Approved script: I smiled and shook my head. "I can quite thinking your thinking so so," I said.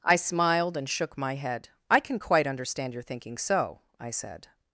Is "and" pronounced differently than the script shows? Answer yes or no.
no